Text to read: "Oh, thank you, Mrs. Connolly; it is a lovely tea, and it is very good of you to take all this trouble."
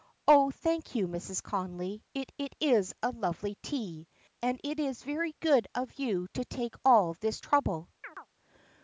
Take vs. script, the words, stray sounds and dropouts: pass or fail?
fail